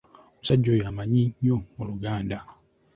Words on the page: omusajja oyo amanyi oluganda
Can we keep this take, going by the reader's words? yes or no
no